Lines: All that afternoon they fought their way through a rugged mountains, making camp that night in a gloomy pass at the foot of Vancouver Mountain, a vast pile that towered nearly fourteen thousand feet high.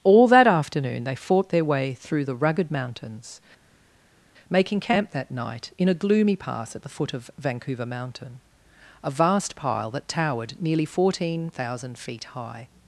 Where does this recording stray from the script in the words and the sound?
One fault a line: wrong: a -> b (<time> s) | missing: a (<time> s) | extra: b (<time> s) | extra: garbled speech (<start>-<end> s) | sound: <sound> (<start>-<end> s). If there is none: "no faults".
wrong: a -> the (2.2 s)